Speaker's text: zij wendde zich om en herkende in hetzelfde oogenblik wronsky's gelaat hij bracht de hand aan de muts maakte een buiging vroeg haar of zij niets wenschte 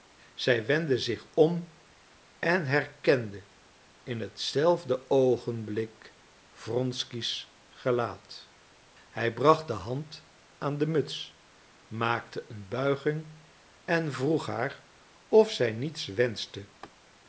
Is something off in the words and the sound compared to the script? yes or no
yes